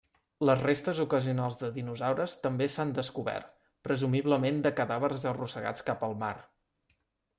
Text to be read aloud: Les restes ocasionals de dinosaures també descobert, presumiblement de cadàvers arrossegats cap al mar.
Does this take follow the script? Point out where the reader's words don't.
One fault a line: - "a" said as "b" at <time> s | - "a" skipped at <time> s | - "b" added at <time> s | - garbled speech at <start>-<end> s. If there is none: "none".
- "s'han" added at 2.8 s